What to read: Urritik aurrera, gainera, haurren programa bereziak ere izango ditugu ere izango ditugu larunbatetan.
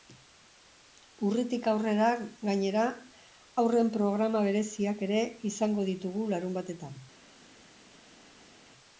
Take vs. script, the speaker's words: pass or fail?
fail